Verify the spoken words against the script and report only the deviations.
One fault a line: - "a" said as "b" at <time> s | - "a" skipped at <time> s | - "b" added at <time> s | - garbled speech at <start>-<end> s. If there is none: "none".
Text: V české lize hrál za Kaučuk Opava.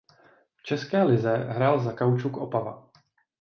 none